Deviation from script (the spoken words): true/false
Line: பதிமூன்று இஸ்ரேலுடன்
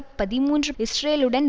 false